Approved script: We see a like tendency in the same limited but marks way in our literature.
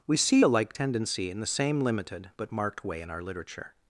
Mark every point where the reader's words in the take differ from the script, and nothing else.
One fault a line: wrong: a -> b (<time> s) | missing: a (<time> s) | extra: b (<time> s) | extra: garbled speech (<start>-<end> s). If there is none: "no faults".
wrong: marks -> marked (2.5 s)